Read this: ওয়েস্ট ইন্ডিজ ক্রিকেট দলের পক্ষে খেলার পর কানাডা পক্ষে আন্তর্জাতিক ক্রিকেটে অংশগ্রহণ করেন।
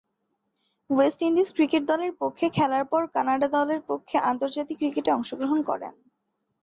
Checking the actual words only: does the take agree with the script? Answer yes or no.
no